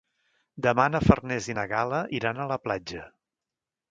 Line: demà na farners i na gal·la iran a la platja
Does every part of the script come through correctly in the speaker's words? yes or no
yes